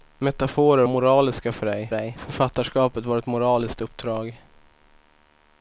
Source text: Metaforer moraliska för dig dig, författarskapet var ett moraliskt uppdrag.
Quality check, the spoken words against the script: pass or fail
pass